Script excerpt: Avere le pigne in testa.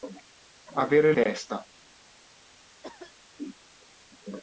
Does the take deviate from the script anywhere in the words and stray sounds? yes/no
yes